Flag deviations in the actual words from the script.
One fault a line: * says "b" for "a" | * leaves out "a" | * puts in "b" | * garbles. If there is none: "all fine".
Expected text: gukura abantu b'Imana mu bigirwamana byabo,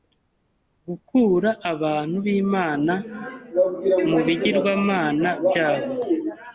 all fine